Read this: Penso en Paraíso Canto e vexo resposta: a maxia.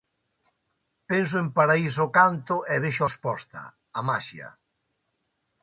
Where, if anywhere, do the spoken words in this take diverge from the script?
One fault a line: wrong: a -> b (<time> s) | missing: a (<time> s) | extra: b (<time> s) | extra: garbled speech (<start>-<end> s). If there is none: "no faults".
no faults